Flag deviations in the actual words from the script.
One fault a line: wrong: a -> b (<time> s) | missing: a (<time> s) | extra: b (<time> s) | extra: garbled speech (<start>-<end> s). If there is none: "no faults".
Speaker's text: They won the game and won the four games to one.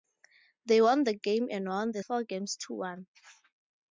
no faults